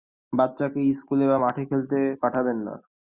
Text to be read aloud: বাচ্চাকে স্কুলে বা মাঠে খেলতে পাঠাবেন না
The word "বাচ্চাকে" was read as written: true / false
true